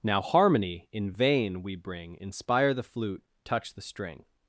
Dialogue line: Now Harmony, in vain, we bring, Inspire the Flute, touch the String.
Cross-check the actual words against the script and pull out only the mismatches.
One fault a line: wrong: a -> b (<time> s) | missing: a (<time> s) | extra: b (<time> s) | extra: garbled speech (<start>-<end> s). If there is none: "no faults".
no faults